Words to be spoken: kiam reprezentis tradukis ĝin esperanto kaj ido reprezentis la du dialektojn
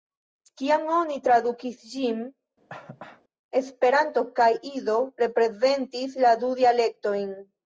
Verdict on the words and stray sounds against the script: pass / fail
fail